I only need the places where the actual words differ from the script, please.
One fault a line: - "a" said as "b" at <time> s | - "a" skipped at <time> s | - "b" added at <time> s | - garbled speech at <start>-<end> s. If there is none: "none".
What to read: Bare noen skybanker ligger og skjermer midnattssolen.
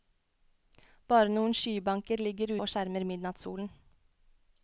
none